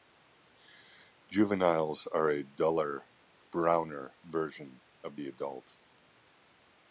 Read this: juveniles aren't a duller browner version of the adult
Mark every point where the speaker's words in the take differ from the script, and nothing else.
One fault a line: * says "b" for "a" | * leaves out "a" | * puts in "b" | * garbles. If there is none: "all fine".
* says "are" for "aren't"